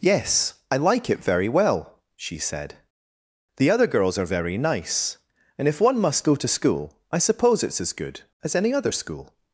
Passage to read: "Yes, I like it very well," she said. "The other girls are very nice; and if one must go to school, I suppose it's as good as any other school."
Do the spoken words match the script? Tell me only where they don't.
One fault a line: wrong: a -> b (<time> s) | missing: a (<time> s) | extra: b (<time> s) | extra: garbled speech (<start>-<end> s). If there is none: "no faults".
no faults